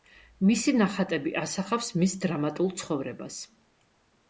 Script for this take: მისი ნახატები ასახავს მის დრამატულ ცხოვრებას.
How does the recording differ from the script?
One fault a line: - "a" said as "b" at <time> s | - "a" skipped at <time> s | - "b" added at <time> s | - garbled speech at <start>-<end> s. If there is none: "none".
none